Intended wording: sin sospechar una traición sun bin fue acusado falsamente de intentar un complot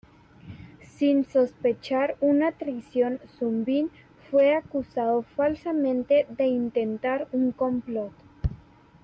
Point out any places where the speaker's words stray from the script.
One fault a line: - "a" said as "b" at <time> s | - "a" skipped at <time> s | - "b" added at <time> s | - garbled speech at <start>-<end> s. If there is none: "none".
none